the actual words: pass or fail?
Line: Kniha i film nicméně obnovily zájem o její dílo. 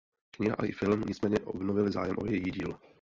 pass